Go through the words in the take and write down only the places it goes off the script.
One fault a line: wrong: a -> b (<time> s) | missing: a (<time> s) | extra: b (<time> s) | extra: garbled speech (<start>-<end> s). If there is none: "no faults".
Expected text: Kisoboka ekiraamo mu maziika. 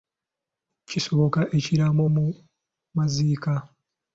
no faults